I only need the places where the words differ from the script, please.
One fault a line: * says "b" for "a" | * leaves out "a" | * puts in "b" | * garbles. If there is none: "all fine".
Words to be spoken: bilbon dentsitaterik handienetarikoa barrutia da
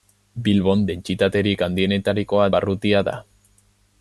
all fine